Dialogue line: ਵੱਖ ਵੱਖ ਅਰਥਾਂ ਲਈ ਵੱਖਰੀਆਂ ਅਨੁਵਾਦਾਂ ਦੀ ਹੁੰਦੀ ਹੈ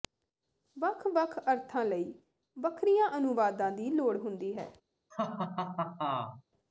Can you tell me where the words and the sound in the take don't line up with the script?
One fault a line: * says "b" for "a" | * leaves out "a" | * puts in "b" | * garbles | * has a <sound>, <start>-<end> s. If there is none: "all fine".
* puts in "ਲੋੜ"
* has a laugh, 5.1-6.4 s